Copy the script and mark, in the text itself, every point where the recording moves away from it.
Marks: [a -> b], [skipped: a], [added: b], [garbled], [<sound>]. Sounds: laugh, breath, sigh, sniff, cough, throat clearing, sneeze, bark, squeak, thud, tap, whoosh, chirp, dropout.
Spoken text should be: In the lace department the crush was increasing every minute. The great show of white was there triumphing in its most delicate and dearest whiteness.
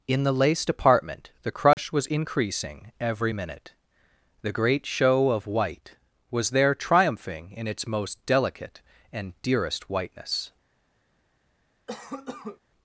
In the lace department the crush [dropout] was increasing every minute. The great show of white was there triumphing in its most delicate and dearest whiteness. [cough]